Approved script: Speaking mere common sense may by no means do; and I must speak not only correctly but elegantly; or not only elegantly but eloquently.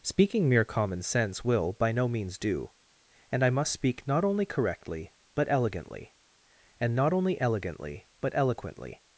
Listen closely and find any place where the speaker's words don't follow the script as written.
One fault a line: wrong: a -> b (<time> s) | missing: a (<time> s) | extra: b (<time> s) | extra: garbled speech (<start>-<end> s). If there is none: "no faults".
wrong: may -> will (1.4 s)
wrong: or -> and (6.8 s)